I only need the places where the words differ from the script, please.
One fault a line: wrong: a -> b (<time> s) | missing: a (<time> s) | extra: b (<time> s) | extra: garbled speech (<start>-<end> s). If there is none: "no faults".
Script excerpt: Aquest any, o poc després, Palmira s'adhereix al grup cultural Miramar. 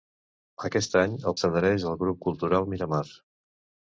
missing: poc després Palmira (1.3 s)